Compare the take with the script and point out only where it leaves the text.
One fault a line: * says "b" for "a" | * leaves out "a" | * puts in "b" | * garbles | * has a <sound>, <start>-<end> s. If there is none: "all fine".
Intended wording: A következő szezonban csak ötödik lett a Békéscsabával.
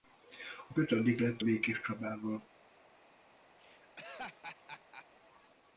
* leaves out "következő szezonban csak"
* leaves out "a"
* has a laugh, 3.6-5.1 s